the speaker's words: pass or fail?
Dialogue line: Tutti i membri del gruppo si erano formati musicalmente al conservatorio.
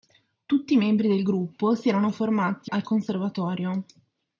fail